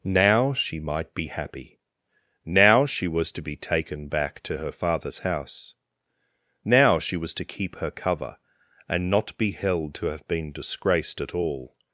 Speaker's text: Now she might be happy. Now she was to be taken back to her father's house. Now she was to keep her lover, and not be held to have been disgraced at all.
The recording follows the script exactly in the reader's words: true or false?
false